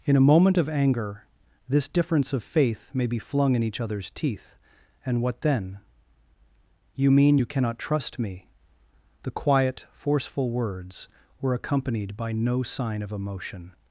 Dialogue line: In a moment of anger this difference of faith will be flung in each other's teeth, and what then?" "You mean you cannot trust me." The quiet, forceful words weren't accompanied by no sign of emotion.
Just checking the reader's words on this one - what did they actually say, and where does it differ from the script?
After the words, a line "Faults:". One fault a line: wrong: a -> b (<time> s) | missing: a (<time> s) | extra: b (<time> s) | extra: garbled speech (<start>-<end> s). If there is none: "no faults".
In a moment of anger this difference of faith may be flung in each other's teeth, and what then?" "You mean you cannot trust me." The quiet, forceful words were accompanied by no sign of emotion.
Faults:
wrong: will -> may (2.9 s)
wrong: weren't -> were (11.4 s)